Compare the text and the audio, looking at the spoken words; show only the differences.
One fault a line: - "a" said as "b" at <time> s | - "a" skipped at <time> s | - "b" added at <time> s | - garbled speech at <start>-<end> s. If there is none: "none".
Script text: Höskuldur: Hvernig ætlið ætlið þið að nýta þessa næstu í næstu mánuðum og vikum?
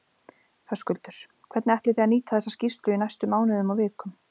- "ætlið" skipped at 2.0 s
- "næstu" said as "skýrslu" at 2.5 s